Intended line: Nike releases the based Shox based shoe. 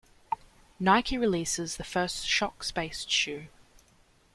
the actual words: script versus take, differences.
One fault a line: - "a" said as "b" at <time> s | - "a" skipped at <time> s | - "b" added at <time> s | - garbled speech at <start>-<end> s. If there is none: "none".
- "based" said as "first" at 1.8 s